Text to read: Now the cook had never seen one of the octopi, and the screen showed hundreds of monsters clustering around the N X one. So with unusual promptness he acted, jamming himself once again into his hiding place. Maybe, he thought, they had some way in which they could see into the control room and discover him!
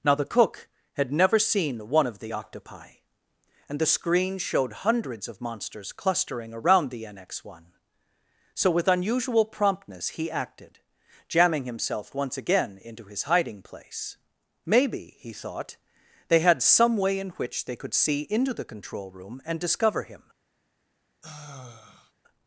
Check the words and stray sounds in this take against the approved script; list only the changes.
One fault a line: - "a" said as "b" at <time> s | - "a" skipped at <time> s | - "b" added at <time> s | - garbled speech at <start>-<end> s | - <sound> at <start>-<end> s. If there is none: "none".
- sigh at 21.2-22.1 s